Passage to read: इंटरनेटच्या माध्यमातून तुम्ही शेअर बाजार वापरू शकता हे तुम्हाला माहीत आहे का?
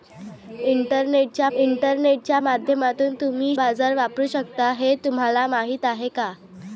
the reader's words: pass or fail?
fail